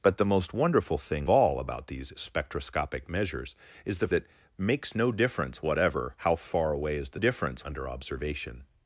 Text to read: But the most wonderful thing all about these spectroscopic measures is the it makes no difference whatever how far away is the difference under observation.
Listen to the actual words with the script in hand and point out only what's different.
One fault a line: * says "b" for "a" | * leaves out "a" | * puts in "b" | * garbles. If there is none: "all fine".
all fine